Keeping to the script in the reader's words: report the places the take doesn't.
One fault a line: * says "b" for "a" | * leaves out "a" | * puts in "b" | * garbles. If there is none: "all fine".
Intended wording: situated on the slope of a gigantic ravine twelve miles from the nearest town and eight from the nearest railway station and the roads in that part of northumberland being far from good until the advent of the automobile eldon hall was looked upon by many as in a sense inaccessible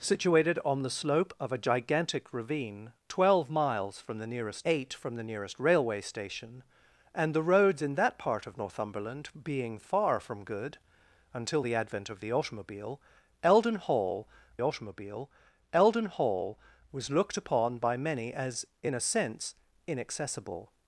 * leaves out "town and"
* puts in "automobile eldon hall"